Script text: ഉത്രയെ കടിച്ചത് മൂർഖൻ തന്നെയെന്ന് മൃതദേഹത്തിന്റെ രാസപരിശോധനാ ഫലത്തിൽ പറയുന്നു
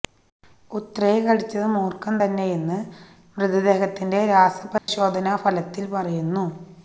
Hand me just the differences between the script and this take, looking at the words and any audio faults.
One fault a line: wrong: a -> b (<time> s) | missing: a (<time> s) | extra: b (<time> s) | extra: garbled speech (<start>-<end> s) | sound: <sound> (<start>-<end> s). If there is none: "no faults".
sound: dropout (4.8-4.9 s)